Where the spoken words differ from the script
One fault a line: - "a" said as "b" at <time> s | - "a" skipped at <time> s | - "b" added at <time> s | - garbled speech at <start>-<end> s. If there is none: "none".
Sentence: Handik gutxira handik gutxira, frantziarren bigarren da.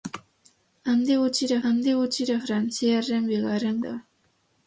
none